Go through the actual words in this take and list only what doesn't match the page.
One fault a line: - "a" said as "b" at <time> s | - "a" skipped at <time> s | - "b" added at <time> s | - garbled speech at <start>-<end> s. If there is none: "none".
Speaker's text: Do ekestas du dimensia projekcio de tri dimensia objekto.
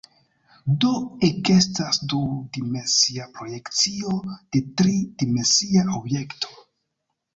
none